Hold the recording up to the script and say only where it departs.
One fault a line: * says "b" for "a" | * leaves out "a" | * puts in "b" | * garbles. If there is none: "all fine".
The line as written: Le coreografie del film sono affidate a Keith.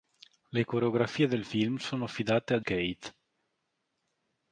all fine